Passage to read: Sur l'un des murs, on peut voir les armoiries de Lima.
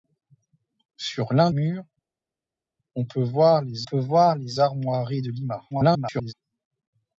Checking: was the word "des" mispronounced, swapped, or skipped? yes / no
yes